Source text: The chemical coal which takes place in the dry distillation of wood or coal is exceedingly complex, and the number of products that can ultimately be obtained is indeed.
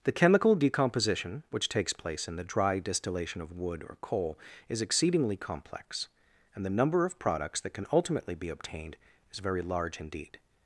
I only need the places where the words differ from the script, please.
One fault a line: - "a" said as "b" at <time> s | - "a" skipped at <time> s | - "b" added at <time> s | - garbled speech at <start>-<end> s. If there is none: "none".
- "coal" said as "decomposition" at 0.6 s
- "very large" added at 9.4 s